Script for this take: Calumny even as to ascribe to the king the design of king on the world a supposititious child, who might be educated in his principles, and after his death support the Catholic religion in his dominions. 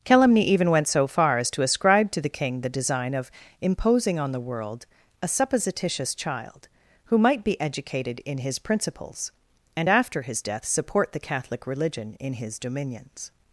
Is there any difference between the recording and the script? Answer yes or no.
yes